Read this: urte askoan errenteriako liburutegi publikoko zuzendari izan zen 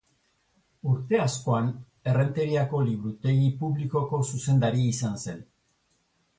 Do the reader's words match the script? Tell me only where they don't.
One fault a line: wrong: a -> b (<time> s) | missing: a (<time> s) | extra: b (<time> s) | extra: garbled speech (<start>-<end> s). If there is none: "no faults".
no faults